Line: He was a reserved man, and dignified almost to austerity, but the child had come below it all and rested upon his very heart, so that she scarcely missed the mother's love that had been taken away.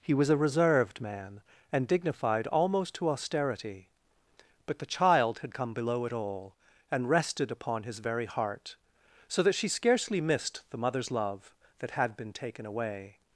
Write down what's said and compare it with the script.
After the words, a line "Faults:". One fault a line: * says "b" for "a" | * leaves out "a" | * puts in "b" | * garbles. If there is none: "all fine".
He was a reserved man, and dignified almost to austerity, but the child had come below it all and rested upon his very heart, so that she scarcely missed the mother's love that had been taken away.
Faults:
all fine